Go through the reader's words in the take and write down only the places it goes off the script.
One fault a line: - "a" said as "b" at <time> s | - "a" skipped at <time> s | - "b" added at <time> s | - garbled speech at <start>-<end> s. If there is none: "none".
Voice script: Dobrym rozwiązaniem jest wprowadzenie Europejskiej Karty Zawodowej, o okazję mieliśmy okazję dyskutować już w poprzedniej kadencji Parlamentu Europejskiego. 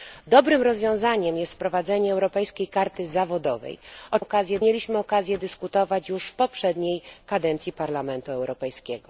none